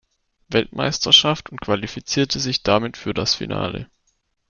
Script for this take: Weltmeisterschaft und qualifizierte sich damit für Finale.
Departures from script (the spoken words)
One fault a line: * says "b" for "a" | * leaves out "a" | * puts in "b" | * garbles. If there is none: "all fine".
* puts in "das"